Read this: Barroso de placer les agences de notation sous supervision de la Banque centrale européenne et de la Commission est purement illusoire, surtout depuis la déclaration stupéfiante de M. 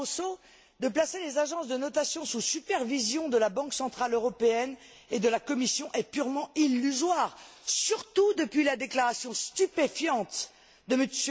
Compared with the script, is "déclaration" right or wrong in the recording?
right